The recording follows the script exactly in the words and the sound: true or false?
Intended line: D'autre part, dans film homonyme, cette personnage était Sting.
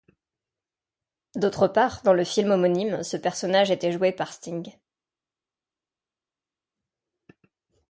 false